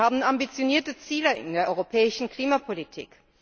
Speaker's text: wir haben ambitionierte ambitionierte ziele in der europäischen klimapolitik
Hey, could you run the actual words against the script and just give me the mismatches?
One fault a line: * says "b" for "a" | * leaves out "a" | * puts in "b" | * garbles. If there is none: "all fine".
* leaves out "ambitionierte"